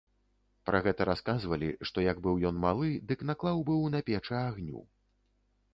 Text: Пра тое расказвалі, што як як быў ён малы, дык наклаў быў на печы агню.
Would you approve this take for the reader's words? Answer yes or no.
no